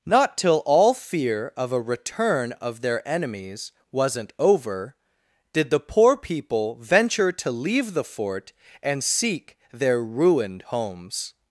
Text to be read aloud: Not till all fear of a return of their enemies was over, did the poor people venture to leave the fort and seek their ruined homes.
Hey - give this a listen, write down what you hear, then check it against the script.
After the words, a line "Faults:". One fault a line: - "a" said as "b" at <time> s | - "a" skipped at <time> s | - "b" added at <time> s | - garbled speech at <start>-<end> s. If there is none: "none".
Not till all fear of a return of their enemies wasn't over, did the poor people venture to leave the fort and seek their ruined homes.
Faults:
- "was" said as "wasn't" at 3.9 s